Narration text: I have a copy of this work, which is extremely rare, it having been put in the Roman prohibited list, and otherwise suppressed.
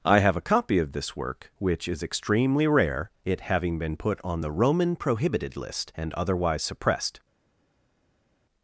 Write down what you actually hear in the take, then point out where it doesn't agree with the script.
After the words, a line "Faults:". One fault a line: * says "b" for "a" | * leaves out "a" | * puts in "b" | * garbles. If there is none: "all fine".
I have a copy of this work, which is extremely rare, it having been put on the Roman prohibited list, and otherwise suppressed.
Faults:
* says "on" for "in"